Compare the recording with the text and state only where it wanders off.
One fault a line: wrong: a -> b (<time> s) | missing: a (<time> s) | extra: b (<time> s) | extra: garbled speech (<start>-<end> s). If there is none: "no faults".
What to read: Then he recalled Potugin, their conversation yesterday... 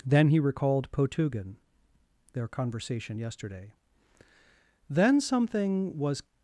extra: Then something was (4.9 s)